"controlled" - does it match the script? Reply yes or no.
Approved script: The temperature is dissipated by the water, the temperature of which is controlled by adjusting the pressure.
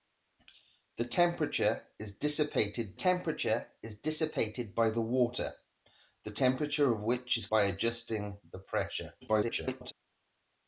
no